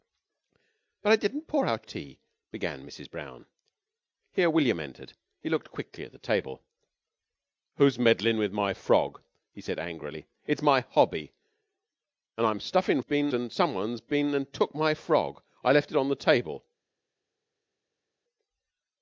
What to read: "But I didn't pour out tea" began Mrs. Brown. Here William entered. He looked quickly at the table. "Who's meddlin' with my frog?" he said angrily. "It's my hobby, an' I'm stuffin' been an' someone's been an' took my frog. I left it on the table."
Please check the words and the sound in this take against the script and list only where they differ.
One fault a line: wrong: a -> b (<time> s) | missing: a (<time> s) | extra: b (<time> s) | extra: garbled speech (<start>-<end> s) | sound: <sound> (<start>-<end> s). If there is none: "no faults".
no faults